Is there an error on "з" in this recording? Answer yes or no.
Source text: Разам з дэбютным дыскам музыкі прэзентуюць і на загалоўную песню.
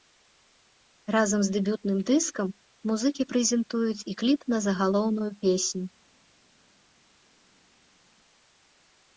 no